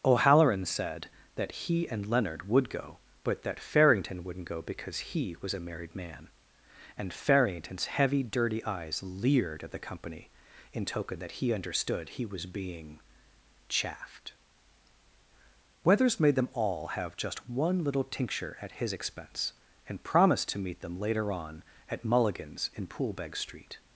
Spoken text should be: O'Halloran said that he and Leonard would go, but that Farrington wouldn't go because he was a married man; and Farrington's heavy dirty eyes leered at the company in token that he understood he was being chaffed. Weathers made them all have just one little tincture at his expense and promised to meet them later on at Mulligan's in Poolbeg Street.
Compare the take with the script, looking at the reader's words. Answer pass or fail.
pass